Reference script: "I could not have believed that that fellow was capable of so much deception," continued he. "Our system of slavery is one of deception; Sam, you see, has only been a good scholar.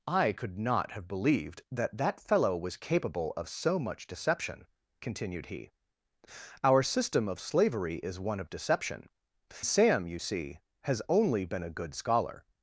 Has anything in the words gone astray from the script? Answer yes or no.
no